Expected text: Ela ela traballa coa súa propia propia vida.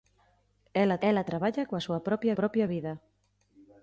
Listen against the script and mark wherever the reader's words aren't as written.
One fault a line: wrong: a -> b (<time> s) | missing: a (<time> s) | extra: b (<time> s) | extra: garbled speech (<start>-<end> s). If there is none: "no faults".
no faults